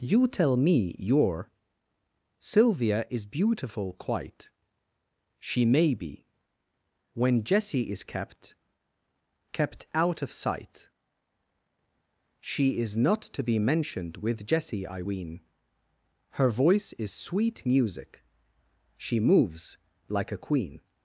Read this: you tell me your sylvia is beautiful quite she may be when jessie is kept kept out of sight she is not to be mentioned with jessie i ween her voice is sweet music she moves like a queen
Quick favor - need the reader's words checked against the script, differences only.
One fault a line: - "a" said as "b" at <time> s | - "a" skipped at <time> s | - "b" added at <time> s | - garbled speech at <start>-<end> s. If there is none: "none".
none